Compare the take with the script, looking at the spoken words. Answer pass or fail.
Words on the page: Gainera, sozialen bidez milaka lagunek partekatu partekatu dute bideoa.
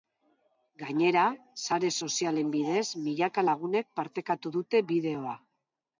fail